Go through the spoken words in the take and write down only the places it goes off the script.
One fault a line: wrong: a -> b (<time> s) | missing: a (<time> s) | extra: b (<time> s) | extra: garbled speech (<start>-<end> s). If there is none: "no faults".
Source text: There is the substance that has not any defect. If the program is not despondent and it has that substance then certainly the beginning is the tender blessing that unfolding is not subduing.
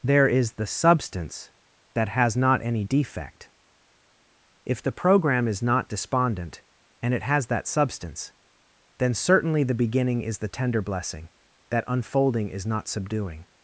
no faults